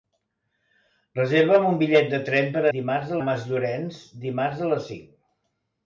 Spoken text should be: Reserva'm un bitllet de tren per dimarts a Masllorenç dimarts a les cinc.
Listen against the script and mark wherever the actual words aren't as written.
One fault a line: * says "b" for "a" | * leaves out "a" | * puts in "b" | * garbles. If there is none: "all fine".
all fine